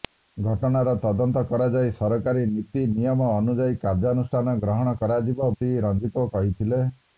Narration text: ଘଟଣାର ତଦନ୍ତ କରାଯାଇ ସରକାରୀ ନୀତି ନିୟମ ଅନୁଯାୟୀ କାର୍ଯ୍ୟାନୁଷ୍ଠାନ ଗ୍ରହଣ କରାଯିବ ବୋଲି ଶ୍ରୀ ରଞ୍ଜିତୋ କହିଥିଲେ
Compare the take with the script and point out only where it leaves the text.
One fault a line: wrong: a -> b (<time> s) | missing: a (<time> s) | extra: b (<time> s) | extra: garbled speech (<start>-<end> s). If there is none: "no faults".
missing: ବୋଲି (5.5 s)